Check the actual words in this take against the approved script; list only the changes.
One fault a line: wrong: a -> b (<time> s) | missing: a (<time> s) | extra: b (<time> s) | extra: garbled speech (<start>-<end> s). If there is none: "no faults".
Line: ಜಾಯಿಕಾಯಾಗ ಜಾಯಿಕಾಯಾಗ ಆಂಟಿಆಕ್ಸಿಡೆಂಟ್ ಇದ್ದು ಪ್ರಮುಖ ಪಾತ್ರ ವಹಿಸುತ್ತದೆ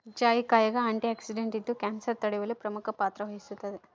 missing: ಜಾಯಿಕಾಯಾಗ (0.8 s)
extra: ಕ್ಯಾನ್ಸರ್ ತಡೆಯುವಲ್ಲಿ (1.8 s)